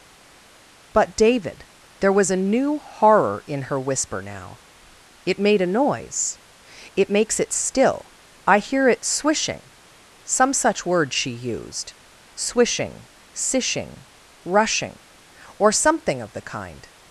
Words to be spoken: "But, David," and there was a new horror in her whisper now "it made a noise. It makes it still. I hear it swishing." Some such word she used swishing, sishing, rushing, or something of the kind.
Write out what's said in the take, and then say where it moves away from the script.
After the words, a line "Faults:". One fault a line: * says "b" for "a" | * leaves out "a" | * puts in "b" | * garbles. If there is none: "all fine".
"But, David," there was a new horror in her whisper now "it made a noise. It makes it still. I hear it swishing." Some such word she used swishing, sishing, rushing, or something of the kind.
Faults:
* leaves out "and"